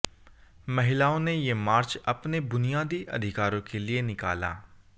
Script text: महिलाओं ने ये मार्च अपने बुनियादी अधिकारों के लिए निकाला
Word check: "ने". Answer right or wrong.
right